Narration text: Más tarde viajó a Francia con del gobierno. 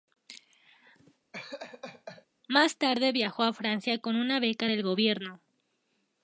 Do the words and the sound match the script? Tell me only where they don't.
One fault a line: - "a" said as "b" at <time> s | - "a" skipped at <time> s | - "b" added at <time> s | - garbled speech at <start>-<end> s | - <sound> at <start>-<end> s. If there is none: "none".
- laugh at 1.3-2.3 s
- "una beca" added at 4.1 s